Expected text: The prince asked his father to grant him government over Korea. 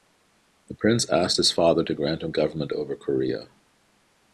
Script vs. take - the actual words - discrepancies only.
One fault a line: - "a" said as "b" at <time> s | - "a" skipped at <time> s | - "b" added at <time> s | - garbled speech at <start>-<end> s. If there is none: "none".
none